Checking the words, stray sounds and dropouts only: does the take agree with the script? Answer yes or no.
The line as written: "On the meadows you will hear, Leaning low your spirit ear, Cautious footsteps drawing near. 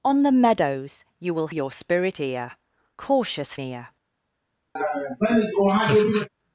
no